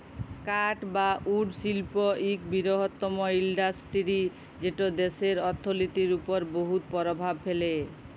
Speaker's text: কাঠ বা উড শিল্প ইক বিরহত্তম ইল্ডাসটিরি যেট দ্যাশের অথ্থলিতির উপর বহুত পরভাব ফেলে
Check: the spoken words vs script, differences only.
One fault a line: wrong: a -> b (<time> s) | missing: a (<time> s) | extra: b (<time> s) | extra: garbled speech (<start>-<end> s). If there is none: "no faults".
no faults